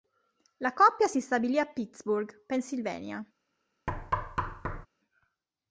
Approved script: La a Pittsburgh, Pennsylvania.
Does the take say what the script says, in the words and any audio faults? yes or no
no